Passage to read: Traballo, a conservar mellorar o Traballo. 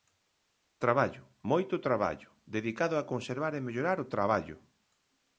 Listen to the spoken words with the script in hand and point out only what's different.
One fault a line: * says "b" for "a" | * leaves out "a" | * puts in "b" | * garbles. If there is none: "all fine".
* puts in "moito traballo dedicado"
* puts in "e"